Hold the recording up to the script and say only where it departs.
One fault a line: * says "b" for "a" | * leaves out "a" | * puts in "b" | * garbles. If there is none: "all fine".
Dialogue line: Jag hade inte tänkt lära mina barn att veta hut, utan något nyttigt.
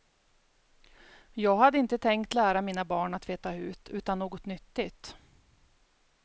all fine